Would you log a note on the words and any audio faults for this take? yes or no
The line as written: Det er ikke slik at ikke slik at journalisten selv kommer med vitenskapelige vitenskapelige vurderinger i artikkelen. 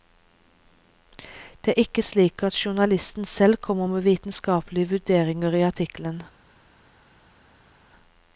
yes